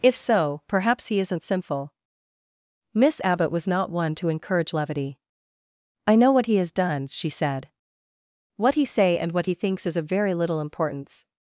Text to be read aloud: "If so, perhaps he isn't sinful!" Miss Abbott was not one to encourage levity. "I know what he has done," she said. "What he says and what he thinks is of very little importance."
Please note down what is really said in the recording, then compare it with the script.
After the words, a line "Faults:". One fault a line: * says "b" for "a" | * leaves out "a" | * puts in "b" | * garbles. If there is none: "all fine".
"If so, perhaps he isn't sinful!" Miss Abbott was not one to encourage levity. "I know what he has done," she said. "What he say and what he thinks is of very little importance."
Faults:
* says "say" for "says"